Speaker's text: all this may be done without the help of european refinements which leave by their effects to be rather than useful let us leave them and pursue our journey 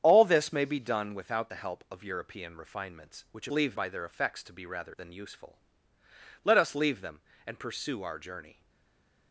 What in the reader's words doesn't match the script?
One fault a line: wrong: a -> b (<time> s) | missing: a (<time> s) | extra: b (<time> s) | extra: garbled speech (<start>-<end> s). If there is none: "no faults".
no faults